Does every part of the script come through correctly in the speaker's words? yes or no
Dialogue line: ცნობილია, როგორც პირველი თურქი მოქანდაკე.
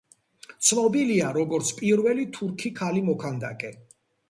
no